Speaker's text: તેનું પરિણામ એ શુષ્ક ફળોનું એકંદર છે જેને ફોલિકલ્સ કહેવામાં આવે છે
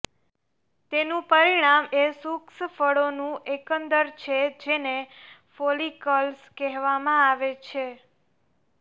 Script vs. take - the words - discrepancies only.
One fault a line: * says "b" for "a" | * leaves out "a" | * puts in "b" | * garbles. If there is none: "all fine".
all fine